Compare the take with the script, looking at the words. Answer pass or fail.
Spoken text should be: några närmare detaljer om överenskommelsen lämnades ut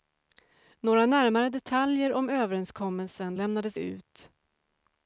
pass